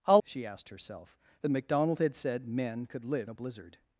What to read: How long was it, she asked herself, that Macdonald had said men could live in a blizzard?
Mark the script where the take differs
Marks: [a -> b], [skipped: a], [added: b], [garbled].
How [skipped: long was it,] she asked herself, that Macdonald had said men could live [skipped: in] a blizzard?